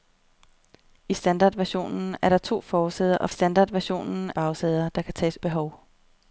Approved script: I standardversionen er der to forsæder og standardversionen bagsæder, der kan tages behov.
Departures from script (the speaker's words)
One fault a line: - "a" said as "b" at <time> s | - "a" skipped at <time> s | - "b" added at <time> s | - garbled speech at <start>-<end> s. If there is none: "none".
none